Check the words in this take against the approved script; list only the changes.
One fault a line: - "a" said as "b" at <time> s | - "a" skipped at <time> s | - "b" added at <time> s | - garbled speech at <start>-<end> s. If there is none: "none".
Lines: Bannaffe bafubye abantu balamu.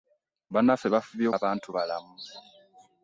none